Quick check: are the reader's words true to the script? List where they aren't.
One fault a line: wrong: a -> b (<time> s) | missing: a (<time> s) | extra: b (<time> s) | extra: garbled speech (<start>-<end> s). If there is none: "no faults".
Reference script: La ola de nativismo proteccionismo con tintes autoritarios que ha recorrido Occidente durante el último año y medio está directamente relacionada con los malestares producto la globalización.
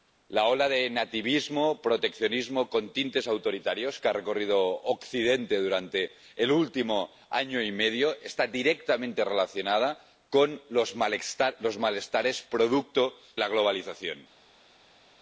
no faults